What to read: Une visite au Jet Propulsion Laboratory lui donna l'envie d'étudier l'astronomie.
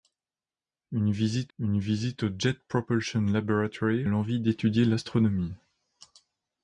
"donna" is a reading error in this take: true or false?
true